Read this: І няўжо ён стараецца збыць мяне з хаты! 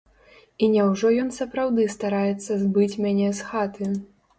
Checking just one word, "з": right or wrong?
right